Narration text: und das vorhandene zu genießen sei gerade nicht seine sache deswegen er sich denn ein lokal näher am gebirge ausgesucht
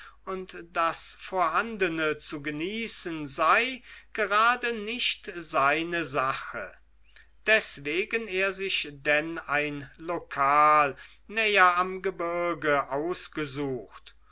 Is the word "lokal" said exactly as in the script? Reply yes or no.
yes